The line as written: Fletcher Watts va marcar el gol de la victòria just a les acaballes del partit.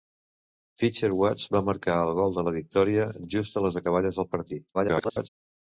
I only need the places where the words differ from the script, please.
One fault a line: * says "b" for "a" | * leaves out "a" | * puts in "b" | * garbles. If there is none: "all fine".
* garbles